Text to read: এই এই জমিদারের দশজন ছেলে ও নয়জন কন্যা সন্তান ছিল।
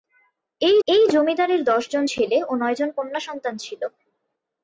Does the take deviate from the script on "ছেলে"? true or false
false